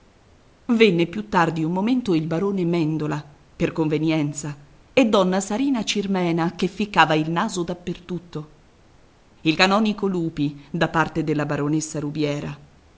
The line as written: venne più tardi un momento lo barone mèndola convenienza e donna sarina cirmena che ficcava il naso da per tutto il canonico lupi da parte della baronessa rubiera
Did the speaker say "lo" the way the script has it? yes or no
no